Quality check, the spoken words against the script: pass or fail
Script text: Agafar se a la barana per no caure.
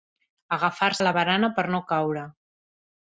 fail